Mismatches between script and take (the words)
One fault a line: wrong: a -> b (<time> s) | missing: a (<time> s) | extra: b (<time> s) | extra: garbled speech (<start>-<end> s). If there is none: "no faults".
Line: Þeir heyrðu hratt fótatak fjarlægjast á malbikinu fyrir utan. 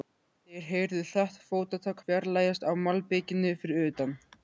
no faults